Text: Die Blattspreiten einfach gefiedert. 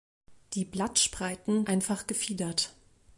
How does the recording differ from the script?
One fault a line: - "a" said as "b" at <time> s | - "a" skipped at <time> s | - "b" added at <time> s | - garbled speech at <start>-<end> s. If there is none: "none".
none